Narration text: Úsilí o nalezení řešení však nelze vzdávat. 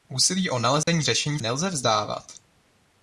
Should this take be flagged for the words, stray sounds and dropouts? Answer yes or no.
yes